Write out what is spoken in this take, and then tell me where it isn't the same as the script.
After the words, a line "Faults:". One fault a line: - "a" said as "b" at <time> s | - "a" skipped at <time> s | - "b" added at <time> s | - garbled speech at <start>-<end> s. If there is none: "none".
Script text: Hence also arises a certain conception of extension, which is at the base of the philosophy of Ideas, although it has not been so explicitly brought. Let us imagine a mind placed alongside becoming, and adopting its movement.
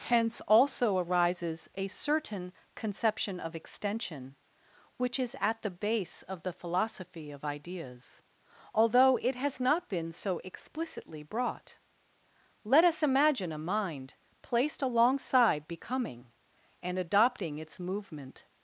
Hence also arises a certain conception of extension, which is at the base of the philosophy of Ideas, although it has not been so explicitly brought. Let us imagine a mind placed alongside becoming, and adopting its movement.
Faults:
none